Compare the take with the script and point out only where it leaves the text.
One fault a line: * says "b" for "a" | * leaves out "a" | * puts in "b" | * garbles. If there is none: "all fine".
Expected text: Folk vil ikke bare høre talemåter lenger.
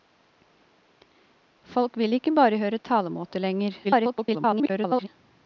* garbles